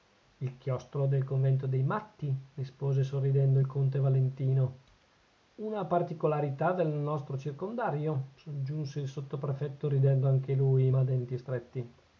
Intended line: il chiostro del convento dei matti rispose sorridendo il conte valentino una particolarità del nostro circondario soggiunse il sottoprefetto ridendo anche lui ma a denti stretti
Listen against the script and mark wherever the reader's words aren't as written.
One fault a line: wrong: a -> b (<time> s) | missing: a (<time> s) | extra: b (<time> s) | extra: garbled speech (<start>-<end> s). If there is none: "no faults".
no faults